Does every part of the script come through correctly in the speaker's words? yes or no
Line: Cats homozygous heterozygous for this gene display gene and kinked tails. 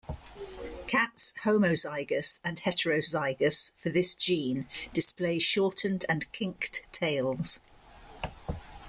no